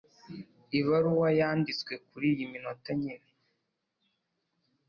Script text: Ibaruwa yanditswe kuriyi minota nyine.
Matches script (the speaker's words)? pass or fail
pass